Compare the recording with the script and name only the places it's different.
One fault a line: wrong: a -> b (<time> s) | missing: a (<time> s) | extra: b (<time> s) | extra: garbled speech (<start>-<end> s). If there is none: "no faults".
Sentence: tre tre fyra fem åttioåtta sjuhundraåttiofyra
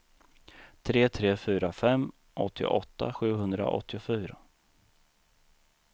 no faults